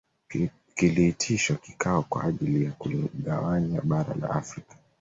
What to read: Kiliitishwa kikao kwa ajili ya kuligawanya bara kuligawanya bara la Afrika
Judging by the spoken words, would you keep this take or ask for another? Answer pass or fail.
fail